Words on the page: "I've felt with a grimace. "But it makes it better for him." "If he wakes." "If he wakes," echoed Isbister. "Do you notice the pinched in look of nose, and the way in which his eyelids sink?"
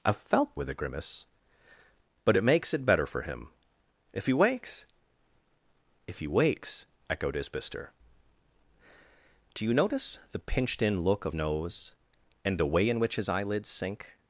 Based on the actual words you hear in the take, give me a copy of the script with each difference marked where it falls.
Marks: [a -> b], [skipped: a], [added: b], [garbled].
"I've felt with a grimace. "But it makes it better for him." "If he wakes." "If he wakes," echoed Isbister. "Do you notice the pinched in look of nose, and the way in which his eyelids sink?"